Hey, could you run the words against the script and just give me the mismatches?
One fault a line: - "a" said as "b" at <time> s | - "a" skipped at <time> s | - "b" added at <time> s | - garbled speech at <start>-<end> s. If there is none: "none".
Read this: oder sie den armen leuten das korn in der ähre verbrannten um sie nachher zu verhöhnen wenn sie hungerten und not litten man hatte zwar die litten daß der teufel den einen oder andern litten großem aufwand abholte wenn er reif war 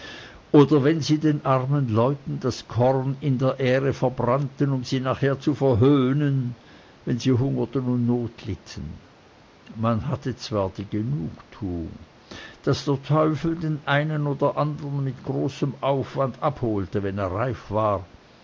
- "wenn" added at 0.8 s
- "litten" said as "genugtuung" at 10.9 s
- "litten" said as "mit" at 15.0 s